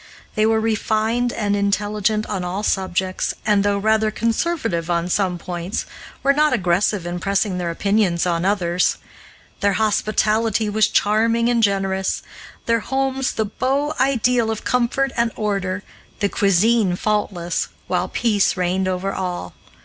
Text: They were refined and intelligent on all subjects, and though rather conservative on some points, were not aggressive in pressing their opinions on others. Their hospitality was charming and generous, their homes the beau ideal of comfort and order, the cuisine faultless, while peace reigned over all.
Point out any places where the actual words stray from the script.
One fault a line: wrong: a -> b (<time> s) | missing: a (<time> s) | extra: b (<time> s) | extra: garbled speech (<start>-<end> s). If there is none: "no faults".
no faults